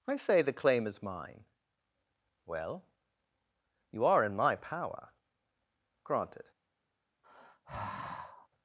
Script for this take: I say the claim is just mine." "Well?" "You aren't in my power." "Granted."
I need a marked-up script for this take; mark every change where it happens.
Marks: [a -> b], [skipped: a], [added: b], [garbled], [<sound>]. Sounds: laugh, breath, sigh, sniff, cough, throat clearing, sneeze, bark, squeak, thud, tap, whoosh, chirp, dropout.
I say the claim is [skipped: just] mine." "Well?" "You [aren't -> are] in my power." "Granted." [sigh]